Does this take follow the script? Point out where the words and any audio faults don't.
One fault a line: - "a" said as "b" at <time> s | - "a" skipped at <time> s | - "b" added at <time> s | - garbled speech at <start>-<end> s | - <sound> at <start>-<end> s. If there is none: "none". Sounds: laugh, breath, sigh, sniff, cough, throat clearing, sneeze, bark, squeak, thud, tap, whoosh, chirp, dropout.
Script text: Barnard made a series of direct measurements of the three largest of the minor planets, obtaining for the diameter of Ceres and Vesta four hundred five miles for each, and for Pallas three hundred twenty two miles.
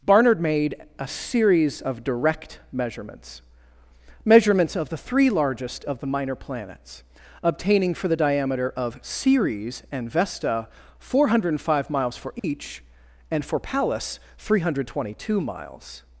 - "measurements" added at 4.2 s
- dropout at 12.4-12.4 s